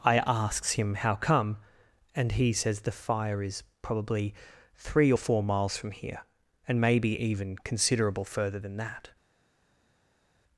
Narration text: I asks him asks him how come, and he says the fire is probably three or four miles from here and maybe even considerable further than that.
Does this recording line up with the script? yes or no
no